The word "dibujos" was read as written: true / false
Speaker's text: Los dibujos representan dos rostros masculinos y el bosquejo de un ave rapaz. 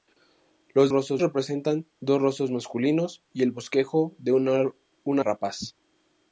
false